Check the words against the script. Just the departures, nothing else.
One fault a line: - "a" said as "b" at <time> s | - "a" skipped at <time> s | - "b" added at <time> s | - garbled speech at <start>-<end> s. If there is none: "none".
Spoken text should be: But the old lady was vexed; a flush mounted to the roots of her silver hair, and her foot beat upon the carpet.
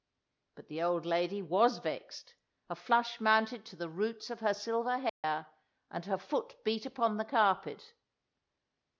none